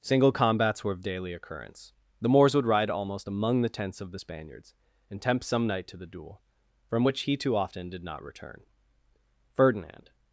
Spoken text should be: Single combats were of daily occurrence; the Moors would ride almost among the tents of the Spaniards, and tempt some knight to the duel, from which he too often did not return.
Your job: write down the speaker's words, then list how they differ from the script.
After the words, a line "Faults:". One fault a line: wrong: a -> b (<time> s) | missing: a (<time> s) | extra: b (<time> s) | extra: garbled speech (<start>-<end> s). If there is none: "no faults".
Single combats were of daily occurrence; the Moors would ride almost among the tents of the Spaniards, and tempt some knight to the duel, from which he too often did not return. Ferdinand
Faults:
extra: Ferdinand (9.5 s)